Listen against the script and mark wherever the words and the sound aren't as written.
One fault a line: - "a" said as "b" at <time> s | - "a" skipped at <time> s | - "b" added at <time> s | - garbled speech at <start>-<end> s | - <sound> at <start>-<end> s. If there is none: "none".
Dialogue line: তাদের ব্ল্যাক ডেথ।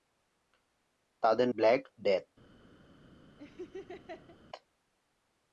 - laugh at 3.4-4.4 s